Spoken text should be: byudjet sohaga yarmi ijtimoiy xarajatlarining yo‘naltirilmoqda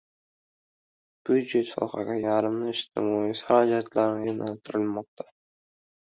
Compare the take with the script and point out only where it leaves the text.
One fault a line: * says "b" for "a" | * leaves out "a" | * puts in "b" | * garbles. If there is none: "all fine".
all fine